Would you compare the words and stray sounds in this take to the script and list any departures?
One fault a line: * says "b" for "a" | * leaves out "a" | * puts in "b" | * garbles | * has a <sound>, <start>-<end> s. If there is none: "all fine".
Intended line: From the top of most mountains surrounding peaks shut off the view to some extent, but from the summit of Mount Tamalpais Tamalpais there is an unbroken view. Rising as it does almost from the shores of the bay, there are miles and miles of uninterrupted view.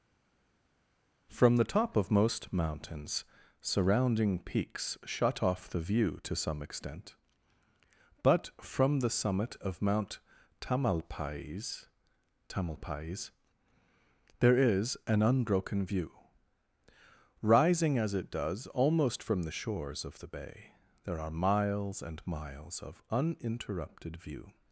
all fine